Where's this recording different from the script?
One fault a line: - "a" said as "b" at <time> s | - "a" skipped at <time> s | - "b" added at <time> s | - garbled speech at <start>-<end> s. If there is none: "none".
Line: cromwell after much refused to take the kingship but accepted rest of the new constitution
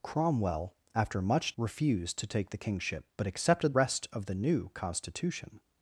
none